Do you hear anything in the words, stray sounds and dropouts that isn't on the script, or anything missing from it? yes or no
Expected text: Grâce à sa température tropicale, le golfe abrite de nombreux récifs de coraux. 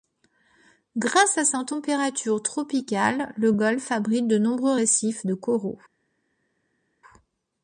no